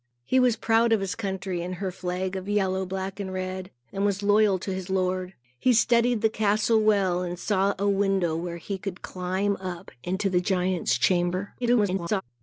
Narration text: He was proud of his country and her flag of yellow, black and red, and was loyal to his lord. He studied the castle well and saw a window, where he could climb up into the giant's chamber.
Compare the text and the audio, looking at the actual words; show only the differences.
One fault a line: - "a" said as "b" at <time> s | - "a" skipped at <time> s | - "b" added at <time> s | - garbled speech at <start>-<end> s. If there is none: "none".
- garbled speech at 11.6-12.2 s